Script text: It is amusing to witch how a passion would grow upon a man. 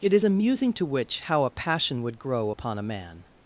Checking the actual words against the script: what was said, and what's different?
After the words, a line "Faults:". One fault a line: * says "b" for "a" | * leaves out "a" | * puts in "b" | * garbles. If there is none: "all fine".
It is amusing to witch how a passion would grow upon a man.
Faults:
all fine